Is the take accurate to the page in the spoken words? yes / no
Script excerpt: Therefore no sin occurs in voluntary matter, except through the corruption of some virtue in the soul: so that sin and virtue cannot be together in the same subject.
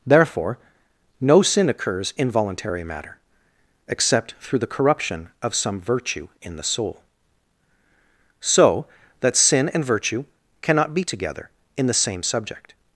yes